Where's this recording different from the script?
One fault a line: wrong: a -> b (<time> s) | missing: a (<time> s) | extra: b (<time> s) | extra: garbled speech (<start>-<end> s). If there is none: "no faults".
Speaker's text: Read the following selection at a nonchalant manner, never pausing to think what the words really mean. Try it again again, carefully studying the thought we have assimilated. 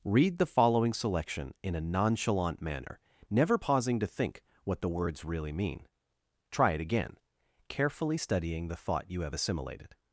wrong: at -> in (1.6 s)
missing: again (7.2 s)
wrong: we -> you (9.1 s)